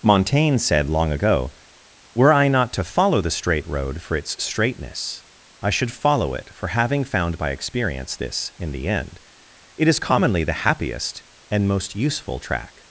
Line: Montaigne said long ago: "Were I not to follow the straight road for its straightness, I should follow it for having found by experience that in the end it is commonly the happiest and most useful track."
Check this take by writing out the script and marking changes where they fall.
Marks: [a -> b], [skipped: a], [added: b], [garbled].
Montaigne said long ago: "Were I not to follow the straight road for its straightness, I should follow it for having found by experience [that -> this] in the end it is commonly the happiest and most useful track."